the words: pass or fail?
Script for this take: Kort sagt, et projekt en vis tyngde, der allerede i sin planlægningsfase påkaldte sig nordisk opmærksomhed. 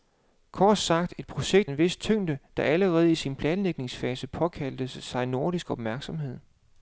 pass